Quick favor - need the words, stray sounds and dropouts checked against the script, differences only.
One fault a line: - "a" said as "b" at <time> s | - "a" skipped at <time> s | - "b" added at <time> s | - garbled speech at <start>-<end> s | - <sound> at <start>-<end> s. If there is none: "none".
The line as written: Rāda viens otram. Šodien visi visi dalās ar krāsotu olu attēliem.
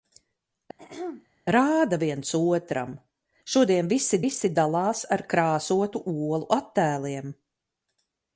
- throat clearing at 0.8-1.3 s